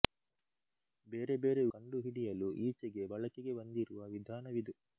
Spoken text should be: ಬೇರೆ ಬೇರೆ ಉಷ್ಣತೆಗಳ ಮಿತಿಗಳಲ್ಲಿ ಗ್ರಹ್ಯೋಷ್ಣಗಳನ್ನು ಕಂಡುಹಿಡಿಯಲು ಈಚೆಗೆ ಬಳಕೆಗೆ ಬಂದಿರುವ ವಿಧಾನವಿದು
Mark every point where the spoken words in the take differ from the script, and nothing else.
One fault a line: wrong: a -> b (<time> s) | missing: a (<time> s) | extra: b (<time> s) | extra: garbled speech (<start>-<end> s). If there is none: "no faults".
missing: ಉಷ್ಣತೆಗಳ ಮಿತಿಗಳಲ್ಲಿ ಗ್ರಹ್ಯೋಷ್ಣಗಳನ್ನು (1.6 s)